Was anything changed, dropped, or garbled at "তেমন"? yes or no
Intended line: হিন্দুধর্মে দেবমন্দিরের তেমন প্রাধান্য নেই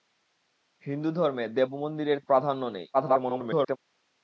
yes